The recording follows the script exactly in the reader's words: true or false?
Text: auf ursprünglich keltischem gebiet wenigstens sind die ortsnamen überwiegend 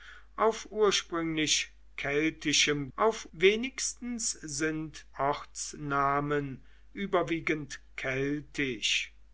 false